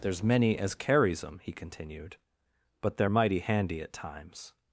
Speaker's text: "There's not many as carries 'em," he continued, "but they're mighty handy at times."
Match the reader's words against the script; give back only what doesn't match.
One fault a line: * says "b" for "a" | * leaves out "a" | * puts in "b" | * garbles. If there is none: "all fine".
* leaves out "not"